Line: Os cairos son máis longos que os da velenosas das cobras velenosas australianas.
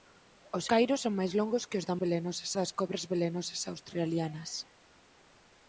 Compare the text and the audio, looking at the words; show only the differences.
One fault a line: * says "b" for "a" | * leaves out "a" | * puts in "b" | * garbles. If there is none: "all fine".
all fine